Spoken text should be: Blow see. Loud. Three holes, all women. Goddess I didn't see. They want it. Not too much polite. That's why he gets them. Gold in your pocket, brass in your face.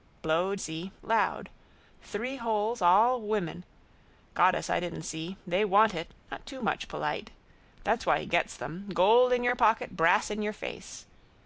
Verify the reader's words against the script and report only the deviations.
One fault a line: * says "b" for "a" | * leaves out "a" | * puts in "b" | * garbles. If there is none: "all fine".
all fine